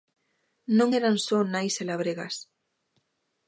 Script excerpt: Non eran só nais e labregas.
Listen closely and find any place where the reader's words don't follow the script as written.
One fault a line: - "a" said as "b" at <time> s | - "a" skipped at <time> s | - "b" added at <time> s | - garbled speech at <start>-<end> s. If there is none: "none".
none